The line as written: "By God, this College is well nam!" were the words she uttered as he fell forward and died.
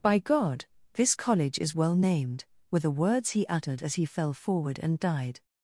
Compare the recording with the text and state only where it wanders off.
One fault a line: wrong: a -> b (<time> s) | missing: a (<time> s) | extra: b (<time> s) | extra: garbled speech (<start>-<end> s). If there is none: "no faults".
wrong: nam -> named (1.9 s)
wrong: she -> he (3.3 s)